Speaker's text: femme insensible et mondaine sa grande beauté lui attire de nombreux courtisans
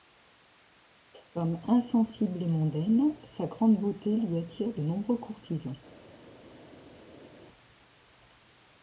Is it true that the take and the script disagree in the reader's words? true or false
false